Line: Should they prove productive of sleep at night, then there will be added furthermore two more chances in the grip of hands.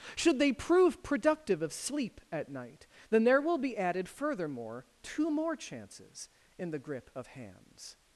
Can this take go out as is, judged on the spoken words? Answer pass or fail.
pass